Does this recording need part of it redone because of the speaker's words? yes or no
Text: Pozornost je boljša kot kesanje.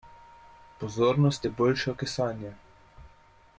yes